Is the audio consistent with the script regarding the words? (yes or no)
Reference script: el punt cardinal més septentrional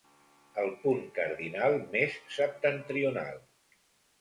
yes